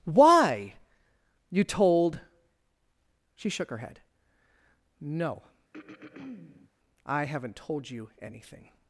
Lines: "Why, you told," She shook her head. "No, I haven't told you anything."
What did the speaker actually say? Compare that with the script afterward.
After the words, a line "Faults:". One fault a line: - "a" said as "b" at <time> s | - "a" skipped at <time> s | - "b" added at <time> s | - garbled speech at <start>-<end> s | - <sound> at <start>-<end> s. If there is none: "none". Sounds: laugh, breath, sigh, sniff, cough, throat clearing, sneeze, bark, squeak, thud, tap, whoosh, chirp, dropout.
"Why, you told," She shook her head. "No, I haven't told you anything."
Faults:
- throat clearing at 5.7-6.7 s